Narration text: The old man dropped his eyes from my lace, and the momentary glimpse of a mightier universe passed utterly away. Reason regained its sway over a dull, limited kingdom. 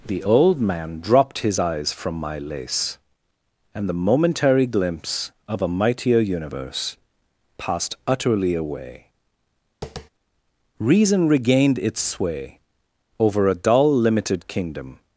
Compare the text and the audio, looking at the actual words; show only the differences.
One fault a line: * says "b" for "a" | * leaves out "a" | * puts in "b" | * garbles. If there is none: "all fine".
all fine